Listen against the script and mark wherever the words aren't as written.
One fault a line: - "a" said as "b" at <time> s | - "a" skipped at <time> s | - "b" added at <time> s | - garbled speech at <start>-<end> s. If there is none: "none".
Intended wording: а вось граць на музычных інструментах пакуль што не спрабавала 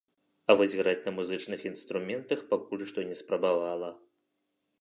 none